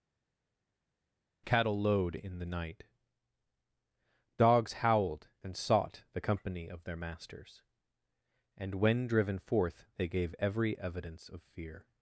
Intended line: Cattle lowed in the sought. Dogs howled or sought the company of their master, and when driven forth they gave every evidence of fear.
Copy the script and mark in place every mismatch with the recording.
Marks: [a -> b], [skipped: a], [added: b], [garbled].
Cattle lowed in the [sought. -> night] Dogs howled [or -> and] sought the company of their [master, -> masters] and when driven forth they gave every evidence of fear.